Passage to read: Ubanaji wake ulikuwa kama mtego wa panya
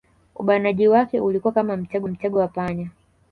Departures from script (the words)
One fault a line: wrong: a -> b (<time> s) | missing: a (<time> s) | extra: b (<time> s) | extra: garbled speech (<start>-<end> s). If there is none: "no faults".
extra: mtego (2.1 s)